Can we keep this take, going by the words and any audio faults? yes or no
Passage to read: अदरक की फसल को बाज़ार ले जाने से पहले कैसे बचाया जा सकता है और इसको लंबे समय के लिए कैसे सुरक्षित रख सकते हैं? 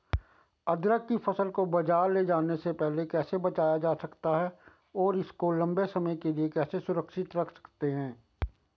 yes